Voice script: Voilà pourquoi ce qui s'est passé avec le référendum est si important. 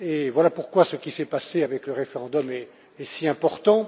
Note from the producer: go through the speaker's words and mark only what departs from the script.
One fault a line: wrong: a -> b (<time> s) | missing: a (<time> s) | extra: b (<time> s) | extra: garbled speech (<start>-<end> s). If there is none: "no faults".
no faults